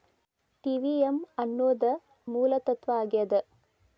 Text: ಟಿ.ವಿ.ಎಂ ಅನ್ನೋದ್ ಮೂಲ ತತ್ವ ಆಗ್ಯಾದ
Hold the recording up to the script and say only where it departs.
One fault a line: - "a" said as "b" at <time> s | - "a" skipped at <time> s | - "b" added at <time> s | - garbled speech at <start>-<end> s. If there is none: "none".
none